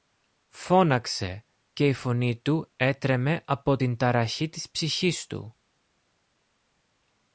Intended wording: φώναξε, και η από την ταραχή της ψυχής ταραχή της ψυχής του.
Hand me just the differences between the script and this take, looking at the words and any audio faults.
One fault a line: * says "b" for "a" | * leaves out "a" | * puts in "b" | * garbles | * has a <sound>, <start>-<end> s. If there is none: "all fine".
* says "φωνή του έτρεμε από την" for "από την ταραχή της ψυχής"